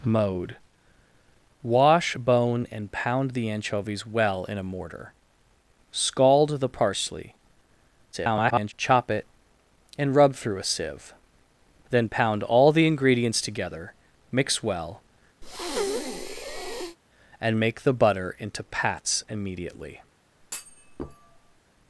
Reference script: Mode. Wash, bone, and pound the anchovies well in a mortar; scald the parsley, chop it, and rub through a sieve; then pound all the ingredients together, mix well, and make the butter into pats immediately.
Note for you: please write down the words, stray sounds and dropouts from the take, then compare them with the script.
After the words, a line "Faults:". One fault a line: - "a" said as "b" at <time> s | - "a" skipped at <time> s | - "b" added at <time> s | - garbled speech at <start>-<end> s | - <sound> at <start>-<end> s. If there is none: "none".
Mode. Wash, bone, and pound the anchovies well in a mortar; scald the parsley, [garbled] chop it, and rub through a sieve; then pound all the ingredients together, mix well, and make the butter into pats immediately.
Faults:
- garbled speech at 8.1-8.7 s
- breath at 15.4-17.0 s
- thud at 20.4-21.6 s